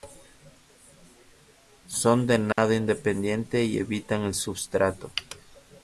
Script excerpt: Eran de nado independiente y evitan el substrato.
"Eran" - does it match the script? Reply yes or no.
no